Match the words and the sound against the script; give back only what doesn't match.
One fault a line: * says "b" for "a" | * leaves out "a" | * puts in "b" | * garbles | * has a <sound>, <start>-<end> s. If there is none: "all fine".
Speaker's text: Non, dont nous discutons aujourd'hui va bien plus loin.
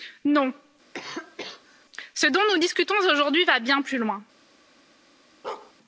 * has a cough, 0.9-1.9 s
* puts in "ce"
* has a bark, 5.4-5.7 s